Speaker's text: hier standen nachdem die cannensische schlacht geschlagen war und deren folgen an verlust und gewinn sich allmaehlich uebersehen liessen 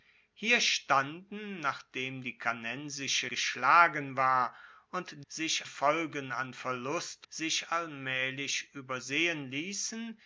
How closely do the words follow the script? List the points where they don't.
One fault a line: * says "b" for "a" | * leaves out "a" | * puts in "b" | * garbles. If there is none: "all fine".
* leaves out "schlacht"
* says "sich" for "deren"
* leaves out "und gewinn"